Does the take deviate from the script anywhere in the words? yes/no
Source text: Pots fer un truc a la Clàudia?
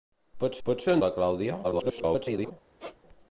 yes